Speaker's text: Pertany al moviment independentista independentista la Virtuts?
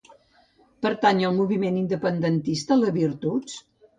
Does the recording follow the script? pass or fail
fail